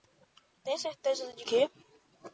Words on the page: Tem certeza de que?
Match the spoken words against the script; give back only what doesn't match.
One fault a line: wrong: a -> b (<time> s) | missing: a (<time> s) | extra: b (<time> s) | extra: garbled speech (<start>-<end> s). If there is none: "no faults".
no faults